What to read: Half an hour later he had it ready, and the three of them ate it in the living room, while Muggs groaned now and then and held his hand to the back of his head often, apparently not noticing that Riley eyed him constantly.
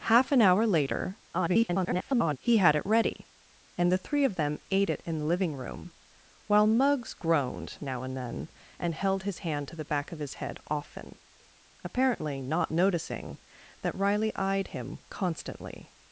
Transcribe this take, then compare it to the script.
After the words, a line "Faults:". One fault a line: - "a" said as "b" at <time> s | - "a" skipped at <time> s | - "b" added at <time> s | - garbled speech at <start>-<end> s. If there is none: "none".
Half an hour later [garbled] he had it ready, and the three of them ate it in the living room, while Muggs groaned now and then and held his hand to the back of his head often, apparently not noticing that Riley eyed him constantly.
Faults:
- garbled speech at 1.3-2.4 s